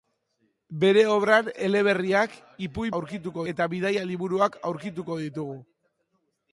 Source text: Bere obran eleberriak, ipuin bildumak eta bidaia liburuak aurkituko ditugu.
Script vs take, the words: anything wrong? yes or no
yes